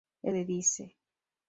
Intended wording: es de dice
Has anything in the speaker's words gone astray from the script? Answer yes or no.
no